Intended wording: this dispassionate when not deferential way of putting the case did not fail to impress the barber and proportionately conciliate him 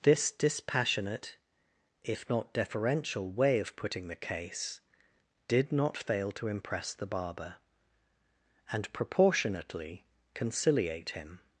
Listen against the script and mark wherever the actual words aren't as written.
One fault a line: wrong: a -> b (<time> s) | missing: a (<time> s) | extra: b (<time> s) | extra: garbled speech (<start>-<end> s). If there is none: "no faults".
wrong: when -> if (2.0 s)